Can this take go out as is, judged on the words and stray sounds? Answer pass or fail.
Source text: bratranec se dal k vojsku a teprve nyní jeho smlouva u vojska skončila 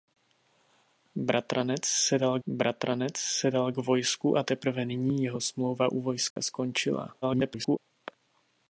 fail